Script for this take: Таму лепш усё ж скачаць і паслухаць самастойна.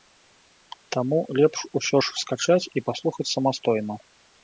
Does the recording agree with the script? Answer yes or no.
yes